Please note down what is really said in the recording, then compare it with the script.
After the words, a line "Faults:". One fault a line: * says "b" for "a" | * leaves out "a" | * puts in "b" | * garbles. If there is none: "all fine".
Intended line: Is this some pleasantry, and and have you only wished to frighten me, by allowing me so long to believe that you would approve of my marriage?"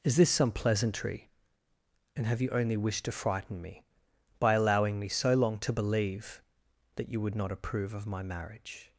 Is this some pleasantry, and have you only wished to frighten me, by allowing me so long to believe that you would not approve of my marriage?"
Faults:
* leaves out "and"
* puts in "not"